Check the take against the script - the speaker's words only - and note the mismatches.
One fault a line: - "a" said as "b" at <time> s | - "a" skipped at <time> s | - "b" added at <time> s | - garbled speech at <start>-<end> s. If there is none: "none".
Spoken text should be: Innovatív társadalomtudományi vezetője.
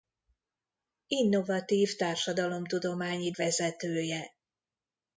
none